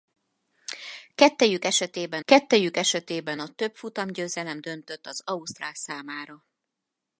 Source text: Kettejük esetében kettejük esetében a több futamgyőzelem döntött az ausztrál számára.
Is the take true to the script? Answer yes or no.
yes